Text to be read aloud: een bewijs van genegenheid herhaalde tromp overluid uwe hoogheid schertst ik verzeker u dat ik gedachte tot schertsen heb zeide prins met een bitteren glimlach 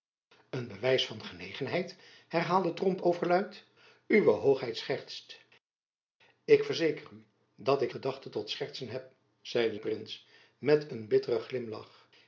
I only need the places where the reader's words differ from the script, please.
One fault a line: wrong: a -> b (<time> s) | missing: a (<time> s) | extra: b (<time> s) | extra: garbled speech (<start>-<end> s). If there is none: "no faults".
no faults